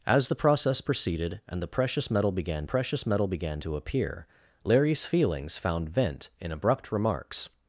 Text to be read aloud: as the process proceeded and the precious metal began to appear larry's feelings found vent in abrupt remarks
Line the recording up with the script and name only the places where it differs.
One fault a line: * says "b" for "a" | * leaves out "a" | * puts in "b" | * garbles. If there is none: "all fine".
* puts in "precious metal began"